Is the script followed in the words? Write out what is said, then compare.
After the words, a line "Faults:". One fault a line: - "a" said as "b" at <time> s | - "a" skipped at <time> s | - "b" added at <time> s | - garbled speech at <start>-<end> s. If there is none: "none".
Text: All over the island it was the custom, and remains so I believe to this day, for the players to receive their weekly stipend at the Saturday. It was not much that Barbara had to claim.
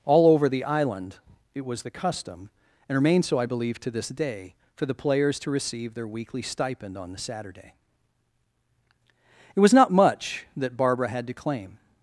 All over the island it was the custom, and remains so I believe to this day, for the players to receive their weekly stipend on the Saturday. It was not much that Barbara had to claim.
Faults:
- "at" said as "on" at 7.0 s